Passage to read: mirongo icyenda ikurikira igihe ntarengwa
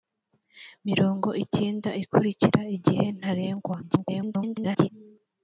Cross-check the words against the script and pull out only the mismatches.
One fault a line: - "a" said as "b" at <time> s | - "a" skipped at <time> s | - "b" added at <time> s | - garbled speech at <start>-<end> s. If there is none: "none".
- garbled speech at 3.8-4.9 s